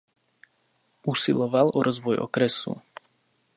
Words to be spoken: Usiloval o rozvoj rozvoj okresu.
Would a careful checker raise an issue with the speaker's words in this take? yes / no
yes